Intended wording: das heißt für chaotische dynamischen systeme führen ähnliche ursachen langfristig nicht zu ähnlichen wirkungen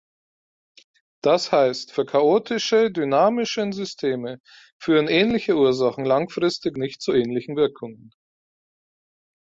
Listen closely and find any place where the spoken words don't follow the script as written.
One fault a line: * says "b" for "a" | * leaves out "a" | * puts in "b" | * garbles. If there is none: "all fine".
all fine